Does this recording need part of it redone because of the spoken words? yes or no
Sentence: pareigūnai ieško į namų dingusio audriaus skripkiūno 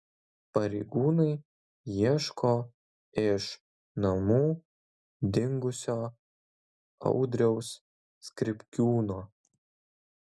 yes